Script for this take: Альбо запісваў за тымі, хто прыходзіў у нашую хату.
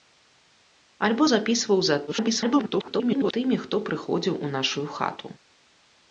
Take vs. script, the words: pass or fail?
fail